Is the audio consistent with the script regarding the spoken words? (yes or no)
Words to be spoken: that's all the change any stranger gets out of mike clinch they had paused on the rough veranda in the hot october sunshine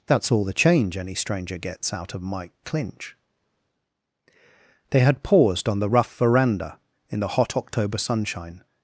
yes